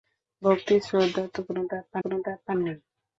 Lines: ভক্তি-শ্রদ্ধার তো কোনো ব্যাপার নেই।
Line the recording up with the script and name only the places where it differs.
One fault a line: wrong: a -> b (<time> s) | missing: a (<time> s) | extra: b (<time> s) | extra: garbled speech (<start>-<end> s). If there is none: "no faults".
extra: কোনো ব্যাপার (2.0 s)